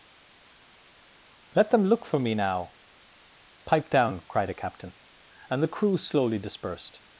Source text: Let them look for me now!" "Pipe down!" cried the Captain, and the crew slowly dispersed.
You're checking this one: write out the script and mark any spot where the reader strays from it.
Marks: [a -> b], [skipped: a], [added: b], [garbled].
Let them look for me now!" "Pipe down!" cried [the -> a] Captain, and the crew slowly dispersed.